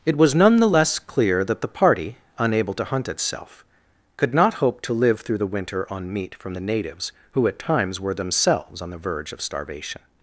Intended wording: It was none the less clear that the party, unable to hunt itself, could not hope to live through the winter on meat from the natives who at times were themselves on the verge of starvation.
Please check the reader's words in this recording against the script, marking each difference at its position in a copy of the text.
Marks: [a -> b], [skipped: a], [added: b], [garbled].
It was none the less clear that the party, unable to hunt itself, could not hope to live through the winter on meat from the natives who at times were themselves on the verge of starvation.